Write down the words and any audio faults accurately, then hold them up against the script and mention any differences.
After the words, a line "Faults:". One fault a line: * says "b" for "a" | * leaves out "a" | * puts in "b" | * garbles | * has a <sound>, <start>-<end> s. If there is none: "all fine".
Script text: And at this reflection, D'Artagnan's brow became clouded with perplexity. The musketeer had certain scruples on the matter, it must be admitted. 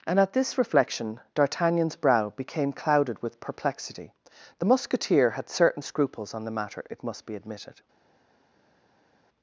And at this reflection, D'Artagnan's brow became clouded with perplexity. The musketeer had certain scruples on the matter, it must be admitted.
Faults:
all fine